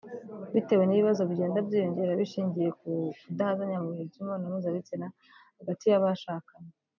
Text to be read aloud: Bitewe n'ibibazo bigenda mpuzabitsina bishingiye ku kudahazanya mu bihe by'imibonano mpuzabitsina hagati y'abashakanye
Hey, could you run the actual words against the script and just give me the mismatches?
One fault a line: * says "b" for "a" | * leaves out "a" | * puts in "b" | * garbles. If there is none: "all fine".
* says "byiyongera" for "mpuzabitsina"